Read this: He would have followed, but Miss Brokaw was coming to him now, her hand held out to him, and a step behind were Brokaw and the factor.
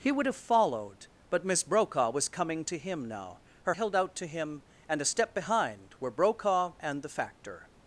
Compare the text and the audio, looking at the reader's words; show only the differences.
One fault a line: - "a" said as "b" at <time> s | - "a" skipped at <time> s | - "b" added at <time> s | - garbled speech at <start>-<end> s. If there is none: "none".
- "hand" skipped at 3.8 s